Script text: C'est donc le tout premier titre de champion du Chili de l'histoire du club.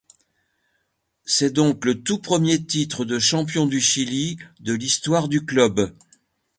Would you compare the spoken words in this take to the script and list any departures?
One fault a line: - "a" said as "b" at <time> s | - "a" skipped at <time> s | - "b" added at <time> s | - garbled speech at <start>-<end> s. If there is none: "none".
none